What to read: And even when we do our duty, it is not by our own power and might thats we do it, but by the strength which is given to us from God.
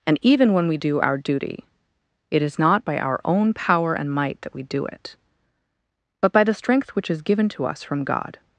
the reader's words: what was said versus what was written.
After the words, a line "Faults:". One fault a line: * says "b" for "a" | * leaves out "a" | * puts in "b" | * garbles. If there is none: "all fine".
And even when we do our duty, it is not by our own power and might that we do it, but by the strength which is given to us from God.
Faults:
* says "that" for "thats"